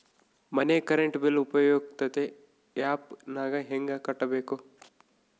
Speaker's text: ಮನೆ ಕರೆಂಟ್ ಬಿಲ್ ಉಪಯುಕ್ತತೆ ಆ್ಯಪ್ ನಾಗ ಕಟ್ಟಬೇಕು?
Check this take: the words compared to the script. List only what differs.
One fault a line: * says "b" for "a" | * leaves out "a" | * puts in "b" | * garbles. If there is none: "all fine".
* puts in "ಹೆಂಗ"